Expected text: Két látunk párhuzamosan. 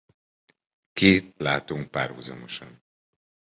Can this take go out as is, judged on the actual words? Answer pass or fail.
pass